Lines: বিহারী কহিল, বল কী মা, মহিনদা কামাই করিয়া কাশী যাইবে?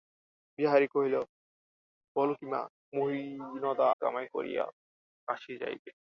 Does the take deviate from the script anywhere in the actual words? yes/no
no